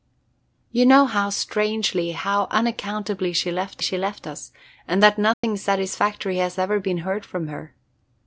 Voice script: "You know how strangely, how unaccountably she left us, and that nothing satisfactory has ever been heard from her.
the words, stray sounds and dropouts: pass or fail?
fail